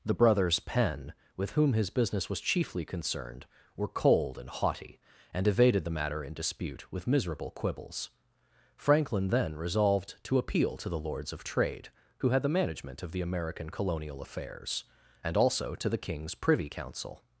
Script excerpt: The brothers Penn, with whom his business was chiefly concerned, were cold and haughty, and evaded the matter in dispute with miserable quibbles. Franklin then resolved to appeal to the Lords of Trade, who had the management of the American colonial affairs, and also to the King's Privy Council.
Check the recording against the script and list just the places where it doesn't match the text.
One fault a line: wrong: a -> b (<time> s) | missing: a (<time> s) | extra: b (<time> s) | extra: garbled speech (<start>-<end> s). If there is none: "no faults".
no faults